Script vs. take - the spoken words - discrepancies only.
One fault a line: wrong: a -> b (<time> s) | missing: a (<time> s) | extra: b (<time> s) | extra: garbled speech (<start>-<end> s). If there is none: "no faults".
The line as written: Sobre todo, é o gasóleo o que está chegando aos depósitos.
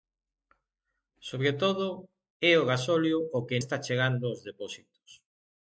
no faults